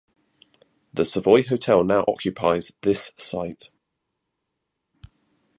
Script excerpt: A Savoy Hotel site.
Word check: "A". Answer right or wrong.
wrong